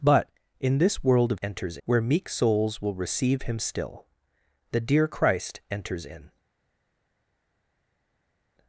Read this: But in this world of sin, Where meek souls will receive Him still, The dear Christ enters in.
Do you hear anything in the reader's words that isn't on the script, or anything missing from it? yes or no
yes